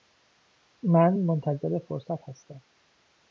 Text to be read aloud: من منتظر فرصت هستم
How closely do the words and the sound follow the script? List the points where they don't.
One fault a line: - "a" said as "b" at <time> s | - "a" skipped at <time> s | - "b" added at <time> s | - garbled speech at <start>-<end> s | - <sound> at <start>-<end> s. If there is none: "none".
none